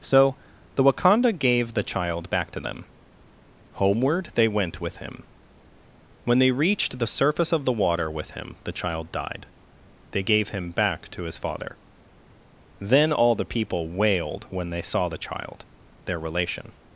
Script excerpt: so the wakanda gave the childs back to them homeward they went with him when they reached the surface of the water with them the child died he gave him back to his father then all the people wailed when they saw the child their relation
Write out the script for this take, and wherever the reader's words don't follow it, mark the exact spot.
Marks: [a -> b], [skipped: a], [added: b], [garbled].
so the wakanda gave the [childs -> child] back to them homeward they went with him when they reached the surface of the water with [them -> him] the child died [he -> they] gave him back to his father then all the people wailed when they saw the child their relation